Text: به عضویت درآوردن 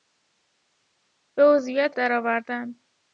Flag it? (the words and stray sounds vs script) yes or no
no